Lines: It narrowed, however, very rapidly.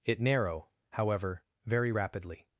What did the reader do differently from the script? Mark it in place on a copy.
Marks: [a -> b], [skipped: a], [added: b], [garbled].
It [narrowed, -> narrow] however, very rapidly.